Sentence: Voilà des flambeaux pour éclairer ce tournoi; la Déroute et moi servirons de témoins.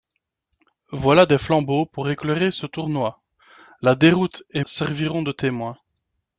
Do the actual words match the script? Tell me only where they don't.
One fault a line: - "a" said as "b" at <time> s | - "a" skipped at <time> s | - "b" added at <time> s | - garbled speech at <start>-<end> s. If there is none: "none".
- "moi" skipped at 4.6 s